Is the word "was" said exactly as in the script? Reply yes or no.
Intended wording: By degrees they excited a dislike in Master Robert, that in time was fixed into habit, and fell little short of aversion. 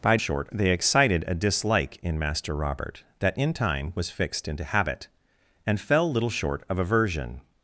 yes